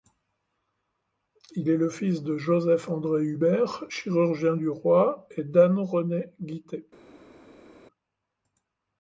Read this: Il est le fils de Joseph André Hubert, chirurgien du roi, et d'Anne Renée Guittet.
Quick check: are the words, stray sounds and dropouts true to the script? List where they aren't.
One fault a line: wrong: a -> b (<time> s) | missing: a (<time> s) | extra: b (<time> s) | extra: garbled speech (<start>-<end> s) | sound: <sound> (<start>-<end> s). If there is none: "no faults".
no faults